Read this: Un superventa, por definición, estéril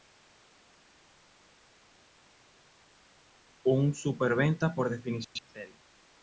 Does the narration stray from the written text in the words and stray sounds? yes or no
no